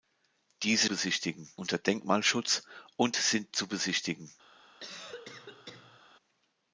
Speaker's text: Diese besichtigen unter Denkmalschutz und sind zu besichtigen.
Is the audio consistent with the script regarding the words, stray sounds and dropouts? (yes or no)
no